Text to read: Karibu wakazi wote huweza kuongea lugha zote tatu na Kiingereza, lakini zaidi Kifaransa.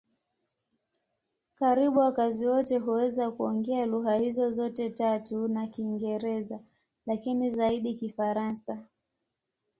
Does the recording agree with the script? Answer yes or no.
no